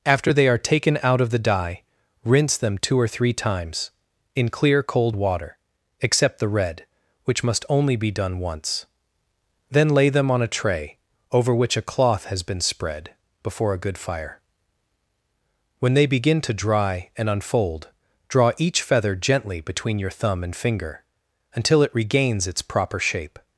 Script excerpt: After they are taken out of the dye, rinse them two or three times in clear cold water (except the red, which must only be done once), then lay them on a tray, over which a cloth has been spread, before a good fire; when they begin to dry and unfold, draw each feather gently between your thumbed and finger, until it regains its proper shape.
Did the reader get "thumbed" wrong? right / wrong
wrong